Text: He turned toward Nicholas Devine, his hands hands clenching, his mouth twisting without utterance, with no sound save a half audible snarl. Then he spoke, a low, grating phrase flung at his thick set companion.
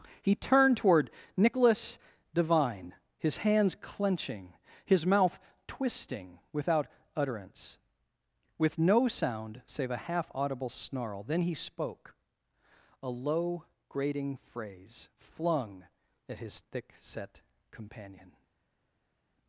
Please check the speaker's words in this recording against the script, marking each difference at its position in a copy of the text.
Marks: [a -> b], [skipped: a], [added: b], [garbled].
He turned toward Nicholas Devine, his hands [skipped: hands] clenching, his mouth twisting without utterance, with no sound save a half audible snarl. Then he spoke, a low, grating phrase flung at his thick set companion.